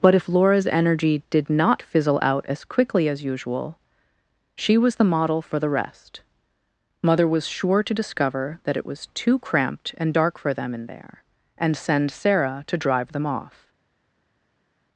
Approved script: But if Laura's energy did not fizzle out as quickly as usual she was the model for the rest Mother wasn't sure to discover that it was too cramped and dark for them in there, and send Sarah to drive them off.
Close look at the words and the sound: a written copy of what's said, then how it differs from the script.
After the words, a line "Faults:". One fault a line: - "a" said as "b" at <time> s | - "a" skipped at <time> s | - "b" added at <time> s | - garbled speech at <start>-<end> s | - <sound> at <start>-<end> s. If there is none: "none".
But if Laura's energy did not fizzle out as quickly as usual she was the model for the rest Mother was sure to discover that it was too cramped and dark for them in there, and send Sarah to drive them off.
Faults:
- "wasn't" said as "was" at 7.3 s